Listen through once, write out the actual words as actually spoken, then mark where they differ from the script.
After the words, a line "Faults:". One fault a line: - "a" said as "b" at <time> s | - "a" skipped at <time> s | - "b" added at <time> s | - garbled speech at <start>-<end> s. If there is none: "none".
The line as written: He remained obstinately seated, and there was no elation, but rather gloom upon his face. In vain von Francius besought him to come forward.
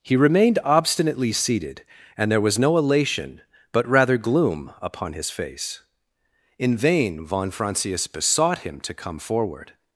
He remained obstinately seated, and there was no elation, but rather gloom upon his face. In vain von Francius besought him to come forward.
Faults:
none